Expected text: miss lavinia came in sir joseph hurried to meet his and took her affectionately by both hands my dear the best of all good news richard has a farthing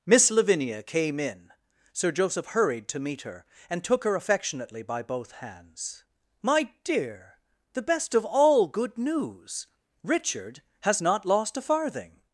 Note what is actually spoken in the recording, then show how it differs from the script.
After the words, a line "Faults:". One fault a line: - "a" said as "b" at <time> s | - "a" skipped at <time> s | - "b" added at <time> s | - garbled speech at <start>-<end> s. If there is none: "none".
miss lavinia came in sir joseph hurried to meet her and took her affectionately by both hands my dear the best of all good news richard has not lost a farthing
Faults:
- "his" said as "her" at 3.2 s
- "not lost" added at 11.0 s